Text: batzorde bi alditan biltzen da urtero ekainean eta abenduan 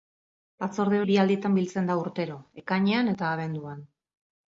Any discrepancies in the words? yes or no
no